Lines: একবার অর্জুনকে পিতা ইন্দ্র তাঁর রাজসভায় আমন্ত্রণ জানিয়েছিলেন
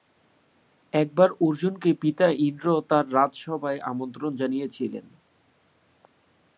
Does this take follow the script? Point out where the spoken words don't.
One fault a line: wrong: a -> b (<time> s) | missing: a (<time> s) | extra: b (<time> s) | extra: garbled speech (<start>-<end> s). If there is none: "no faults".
no faults